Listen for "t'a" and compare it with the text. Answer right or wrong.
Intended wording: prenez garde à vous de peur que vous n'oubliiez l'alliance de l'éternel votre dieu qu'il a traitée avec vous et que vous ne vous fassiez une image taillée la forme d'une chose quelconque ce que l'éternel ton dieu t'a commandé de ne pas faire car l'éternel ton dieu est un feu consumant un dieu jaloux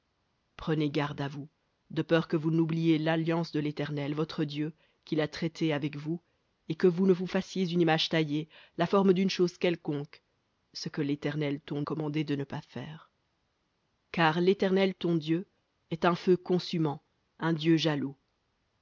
wrong